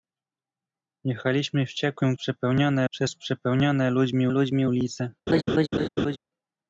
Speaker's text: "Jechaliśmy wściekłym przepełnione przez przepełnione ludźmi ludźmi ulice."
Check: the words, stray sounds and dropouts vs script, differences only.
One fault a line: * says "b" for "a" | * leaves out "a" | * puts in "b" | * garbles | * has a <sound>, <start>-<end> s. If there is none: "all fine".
* has a laugh, 5.3-6.2 s